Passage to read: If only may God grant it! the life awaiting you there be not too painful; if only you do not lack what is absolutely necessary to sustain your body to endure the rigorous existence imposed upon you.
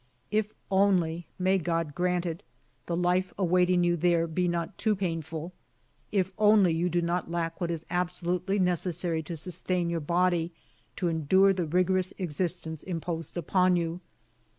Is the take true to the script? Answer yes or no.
yes